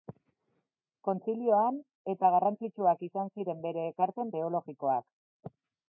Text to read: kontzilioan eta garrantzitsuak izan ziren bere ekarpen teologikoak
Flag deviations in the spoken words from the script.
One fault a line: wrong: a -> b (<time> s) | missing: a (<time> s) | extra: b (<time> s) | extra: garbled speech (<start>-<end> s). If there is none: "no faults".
no faults